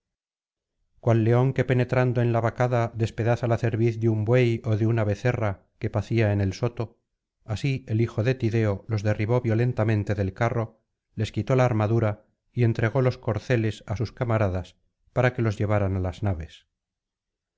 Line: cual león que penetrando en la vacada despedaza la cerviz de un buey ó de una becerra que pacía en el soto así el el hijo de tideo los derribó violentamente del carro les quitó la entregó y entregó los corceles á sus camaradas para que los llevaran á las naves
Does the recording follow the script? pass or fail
fail